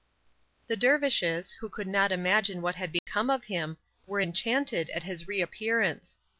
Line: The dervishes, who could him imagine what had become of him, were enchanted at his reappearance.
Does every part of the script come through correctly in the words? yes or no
no